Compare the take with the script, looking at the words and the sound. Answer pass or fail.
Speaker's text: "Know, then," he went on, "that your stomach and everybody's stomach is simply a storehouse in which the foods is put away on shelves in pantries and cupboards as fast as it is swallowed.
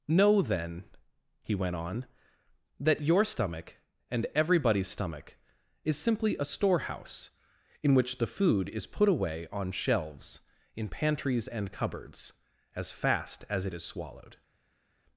fail